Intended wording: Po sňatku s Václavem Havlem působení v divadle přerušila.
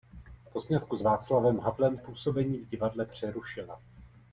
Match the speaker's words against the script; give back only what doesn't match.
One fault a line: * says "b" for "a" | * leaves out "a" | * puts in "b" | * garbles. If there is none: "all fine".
all fine